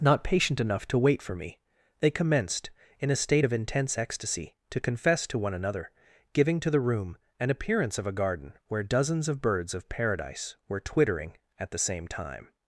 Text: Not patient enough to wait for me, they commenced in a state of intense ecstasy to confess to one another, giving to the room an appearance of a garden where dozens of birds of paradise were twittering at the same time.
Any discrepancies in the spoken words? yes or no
no